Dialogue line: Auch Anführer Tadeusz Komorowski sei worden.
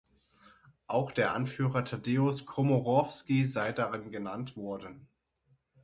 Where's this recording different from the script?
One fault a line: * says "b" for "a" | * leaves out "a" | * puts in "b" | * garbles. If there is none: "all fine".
* puts in "der"
* puts in "darin genannt"